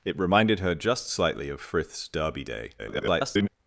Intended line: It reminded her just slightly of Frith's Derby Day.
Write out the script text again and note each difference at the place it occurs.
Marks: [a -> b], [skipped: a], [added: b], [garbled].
It reminded her just slightly of Frith's Derby Day. [garbled]